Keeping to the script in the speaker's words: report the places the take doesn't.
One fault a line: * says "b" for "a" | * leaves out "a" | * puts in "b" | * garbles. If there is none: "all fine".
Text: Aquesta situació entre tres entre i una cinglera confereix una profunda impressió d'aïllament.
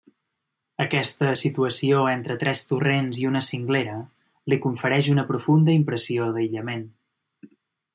* says "torrents" for "entre"
* puts in "li"